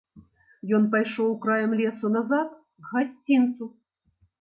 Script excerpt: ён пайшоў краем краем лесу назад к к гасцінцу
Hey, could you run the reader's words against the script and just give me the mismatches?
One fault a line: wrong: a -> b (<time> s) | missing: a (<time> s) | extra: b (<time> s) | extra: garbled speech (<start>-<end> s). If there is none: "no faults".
missing: краем (1.7 s)
missing: к (3.0 s)